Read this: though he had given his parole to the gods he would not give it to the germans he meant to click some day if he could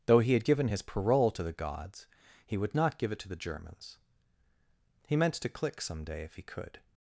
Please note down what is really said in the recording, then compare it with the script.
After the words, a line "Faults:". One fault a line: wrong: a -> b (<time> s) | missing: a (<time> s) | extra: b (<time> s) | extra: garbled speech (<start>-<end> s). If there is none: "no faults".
though he had given his parole to the gods he would not give it to the germans he meant to click some day if he could
Faults:
no faults